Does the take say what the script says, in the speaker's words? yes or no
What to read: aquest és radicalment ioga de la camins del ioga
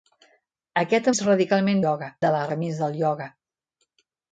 yes